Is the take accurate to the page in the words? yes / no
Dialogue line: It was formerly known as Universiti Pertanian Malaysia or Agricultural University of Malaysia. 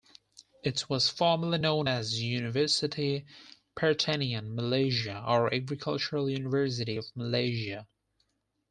yes